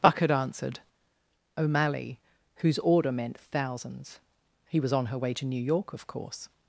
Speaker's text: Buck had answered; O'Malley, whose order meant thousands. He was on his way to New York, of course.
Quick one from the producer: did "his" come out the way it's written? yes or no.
no